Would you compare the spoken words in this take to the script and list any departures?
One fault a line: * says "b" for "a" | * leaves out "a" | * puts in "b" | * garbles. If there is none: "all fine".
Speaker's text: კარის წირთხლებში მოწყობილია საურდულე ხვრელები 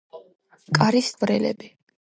* leaves out "წირთხლებში მოწყობილია საურდულე"